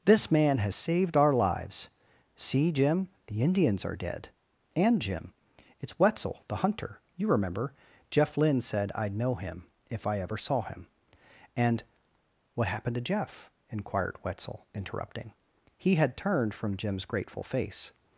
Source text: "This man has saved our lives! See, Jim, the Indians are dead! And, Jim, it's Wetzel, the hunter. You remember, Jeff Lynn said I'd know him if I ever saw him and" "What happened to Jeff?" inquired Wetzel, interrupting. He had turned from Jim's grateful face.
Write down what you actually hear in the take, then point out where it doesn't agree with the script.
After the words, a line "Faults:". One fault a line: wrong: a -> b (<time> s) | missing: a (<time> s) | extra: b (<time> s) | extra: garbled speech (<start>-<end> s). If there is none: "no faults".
"This man has saved our lives! See, Jim, the Indians are dead! And, Jim, it's Wetzel, the hunter. You remember, Jeff Lynn said I'd know him if I ever saw him and" "What happened to Jeff?" inquired Wetzel, interrupting. He had turned from Jim's grateful face.
Faults:
no faults